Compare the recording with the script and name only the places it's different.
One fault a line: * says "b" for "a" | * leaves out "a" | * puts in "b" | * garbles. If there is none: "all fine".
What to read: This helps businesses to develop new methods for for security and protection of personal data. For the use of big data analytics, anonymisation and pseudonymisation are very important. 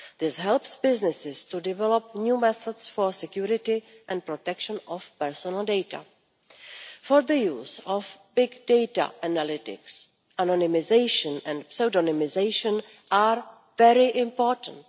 * leaves out "for"